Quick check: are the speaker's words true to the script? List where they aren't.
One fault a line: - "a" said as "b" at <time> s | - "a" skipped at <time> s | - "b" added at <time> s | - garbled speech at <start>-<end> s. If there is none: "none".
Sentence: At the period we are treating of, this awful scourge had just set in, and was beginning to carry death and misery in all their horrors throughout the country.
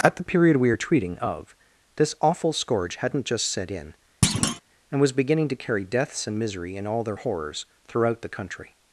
- "had" said as "hadn't" at 3.0 s
- "death" said as "deaths" at 5.8 s